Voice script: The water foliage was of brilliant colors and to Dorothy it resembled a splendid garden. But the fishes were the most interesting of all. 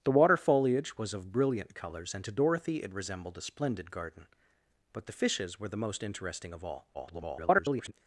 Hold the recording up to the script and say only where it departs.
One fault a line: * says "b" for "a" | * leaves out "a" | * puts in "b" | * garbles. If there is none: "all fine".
* garbles